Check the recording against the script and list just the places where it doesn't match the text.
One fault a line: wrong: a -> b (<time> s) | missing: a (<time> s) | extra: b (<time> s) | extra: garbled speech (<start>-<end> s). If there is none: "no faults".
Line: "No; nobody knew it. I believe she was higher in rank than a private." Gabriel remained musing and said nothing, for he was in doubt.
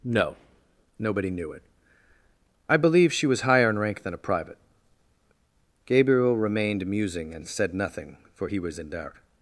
no faults